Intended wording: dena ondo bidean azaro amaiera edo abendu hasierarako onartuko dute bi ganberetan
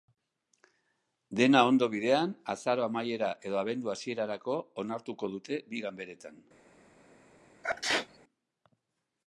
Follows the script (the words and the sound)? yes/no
no